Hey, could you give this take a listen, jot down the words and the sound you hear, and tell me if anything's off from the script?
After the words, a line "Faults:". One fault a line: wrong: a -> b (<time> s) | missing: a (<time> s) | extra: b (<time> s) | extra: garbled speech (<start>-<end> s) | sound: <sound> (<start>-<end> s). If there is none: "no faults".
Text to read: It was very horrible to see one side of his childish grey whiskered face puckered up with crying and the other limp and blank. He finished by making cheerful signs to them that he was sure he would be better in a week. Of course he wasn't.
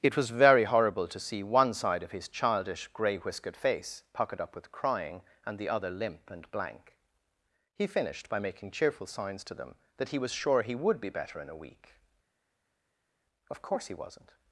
It was very horrible to see one side of his childish grey whiskered face puckered up with crying and the other limp and blank. He finished by making cheerful signs to them that he was sure he would be better in a week. Of course he wasn't.
Faults:
no faults